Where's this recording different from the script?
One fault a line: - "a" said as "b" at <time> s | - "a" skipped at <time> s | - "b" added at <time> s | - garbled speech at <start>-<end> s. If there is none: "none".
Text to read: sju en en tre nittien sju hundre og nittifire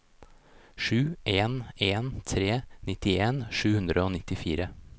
none